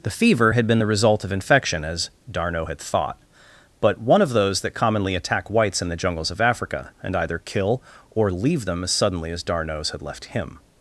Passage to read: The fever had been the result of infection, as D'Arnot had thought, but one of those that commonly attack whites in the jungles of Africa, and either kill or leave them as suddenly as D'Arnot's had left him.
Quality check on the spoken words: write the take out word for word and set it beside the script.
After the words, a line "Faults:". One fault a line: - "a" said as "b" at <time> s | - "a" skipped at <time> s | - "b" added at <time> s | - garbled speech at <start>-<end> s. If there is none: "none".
The fever had been the result of infection, as D'Arnot had thought, but one of those that commonly attack whites in the jungles of Africa, and either kill or leave them as suddenly as D'Arnot's had left him.
Faults:
none